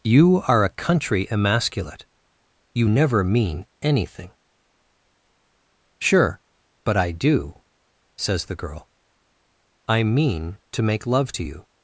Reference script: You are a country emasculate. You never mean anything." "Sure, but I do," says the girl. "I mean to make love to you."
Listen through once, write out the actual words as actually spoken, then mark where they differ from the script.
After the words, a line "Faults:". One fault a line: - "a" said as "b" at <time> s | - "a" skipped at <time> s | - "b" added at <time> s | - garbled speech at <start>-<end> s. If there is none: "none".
You are a country emasculate. You never mean anything." "Sure, but I do," says the girl. "I mean to make love to you."
Faults:
none